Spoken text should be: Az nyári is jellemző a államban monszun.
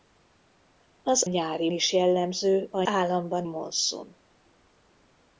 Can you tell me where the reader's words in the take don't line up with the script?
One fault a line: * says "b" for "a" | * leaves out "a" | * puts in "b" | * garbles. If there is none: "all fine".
all fine